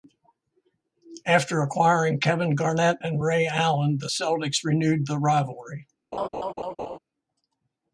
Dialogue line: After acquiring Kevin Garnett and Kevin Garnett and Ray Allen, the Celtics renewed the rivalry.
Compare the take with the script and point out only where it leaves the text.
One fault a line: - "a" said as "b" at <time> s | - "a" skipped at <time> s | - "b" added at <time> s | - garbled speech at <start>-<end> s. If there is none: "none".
- "Kevin Garnett and" skipped at 3.2 s